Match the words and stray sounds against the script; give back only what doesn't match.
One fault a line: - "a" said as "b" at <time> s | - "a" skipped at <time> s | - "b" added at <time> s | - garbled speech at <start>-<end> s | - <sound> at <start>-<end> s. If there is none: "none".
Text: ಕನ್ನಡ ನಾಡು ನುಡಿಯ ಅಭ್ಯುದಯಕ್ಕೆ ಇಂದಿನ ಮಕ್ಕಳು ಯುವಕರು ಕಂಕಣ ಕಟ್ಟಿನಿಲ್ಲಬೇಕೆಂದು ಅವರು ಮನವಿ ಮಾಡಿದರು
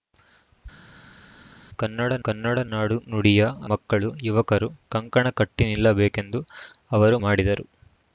- "ಕನ್ನಡ" added at 2.2 s
- "ಅಭ್ಯುದಯಕ್ಕೆ ಇಂದಿನ" skipped at 3.4 s
- "ಮನವಿ" skipped at 7.2 s